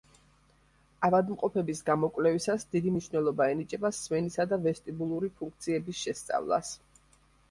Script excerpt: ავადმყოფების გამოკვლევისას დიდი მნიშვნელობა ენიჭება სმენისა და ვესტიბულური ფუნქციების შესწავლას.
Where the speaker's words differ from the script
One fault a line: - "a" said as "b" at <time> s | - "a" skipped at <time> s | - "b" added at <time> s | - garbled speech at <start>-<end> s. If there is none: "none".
none